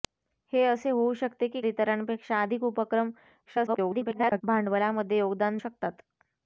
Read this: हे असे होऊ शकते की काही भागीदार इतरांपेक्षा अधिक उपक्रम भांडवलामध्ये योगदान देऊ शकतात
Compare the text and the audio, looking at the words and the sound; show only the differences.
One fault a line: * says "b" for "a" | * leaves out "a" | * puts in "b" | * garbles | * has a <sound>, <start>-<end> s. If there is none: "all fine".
* leaves out "काही भागीदार"
* garbles
* leaves out "देऊ"